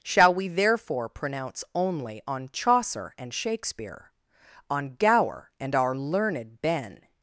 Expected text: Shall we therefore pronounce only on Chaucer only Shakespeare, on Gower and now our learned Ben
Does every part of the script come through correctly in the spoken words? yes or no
no